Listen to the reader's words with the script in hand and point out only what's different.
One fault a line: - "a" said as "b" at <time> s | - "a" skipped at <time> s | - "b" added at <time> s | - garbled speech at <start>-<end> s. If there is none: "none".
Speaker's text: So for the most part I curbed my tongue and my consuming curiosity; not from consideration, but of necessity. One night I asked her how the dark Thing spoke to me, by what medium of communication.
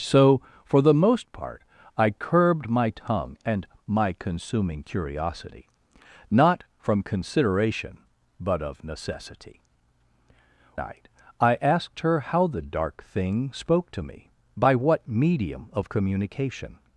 - "One" skipped at 9.6 s